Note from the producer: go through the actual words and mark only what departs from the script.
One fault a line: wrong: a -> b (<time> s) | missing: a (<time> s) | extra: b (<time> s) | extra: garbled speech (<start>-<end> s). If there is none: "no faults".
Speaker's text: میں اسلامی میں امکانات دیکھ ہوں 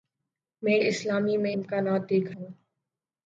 no faults